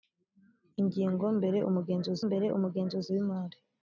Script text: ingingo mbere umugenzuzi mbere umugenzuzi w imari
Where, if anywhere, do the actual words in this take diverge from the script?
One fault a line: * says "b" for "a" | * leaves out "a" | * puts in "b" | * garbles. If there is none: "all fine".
all fine